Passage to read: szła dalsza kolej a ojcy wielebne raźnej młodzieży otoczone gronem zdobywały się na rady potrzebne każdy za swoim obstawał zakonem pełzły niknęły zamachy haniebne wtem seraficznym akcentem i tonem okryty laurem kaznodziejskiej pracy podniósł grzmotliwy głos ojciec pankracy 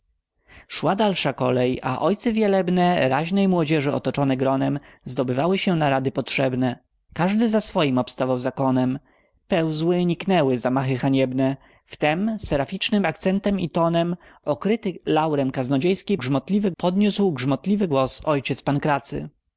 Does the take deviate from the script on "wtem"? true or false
false